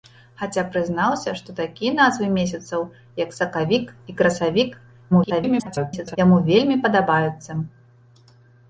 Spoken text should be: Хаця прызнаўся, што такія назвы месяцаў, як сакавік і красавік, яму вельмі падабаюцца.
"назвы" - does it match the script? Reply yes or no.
yes